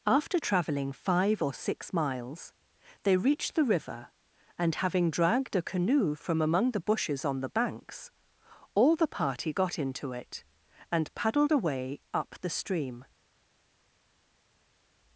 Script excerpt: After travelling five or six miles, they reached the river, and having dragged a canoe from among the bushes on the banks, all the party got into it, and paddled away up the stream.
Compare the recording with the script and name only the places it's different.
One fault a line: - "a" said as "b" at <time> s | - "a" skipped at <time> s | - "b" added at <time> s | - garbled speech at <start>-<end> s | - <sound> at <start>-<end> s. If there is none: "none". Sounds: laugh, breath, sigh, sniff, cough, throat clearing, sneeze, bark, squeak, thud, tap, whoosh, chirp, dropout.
none